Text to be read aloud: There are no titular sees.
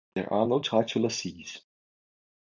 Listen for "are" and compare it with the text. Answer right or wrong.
right